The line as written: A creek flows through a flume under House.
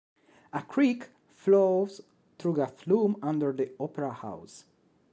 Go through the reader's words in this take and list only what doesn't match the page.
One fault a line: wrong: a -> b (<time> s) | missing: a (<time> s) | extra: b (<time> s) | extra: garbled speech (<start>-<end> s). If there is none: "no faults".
extra: the Opera (3.5 s)